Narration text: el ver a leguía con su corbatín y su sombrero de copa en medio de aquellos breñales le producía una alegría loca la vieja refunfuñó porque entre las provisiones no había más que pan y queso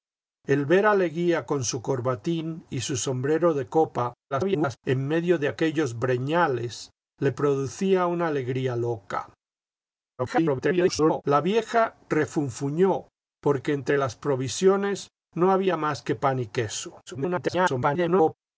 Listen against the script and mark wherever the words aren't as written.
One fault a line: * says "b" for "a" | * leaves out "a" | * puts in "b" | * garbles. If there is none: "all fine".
* garbles
* garbles
* garbles